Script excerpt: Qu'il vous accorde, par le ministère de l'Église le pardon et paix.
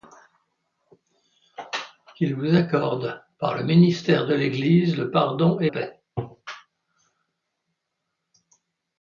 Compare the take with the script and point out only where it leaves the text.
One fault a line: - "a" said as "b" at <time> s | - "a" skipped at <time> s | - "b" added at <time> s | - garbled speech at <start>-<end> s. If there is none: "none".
none